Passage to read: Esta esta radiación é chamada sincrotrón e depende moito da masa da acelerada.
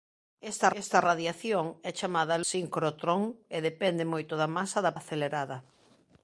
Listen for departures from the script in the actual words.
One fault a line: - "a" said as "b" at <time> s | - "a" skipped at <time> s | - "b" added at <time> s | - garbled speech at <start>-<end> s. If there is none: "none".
none